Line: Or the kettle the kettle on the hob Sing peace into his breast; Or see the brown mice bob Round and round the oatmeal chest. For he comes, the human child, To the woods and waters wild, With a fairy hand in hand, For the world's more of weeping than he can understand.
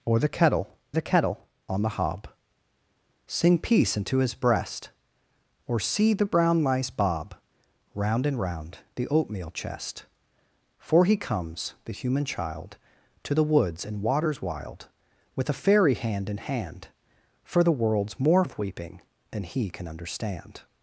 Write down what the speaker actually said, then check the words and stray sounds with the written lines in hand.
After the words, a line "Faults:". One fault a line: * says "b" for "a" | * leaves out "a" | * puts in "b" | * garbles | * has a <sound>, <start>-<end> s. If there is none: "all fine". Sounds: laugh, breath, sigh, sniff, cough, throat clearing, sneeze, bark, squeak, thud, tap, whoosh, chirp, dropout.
Or the kettle the kettle on the hob Sing peace into his breast; Or see the brown mice bob Round and round the oatmeal chest. For he comes, the human child, To the woods and waters wild, With a fairy hand in hand, For the world's more of weeping than he can understand.
Faults:
all fine